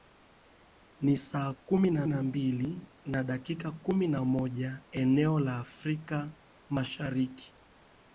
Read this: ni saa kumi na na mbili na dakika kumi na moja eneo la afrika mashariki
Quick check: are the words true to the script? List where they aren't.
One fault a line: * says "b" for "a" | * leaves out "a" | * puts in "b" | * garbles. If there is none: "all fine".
all fine